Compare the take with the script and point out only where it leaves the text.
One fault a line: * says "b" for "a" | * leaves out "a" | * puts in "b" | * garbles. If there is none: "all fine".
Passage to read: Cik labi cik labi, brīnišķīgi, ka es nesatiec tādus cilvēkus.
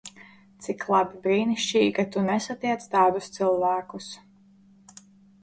* leaves out "cik labi"
* says "tu" for "es"